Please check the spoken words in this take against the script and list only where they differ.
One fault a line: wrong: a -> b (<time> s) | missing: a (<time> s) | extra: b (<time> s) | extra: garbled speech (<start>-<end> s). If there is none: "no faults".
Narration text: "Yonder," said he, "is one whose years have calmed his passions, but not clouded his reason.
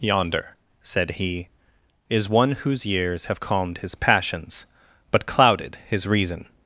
missing: not (5.3 s)